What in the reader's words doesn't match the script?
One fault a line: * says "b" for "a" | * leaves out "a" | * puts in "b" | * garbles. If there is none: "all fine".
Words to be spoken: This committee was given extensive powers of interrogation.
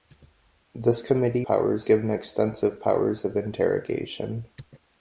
* says "powers" for "was"